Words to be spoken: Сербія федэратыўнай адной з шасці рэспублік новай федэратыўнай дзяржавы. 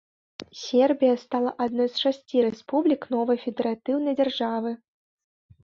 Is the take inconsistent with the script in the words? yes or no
yes